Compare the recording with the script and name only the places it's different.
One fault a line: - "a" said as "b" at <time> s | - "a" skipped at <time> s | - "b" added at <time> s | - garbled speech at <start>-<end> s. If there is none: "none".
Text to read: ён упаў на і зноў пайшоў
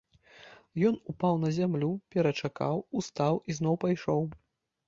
- "зямлю перачакаў устаў" added at 1.6 s